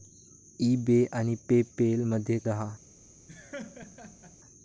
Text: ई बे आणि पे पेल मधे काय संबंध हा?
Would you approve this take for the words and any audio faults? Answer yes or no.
no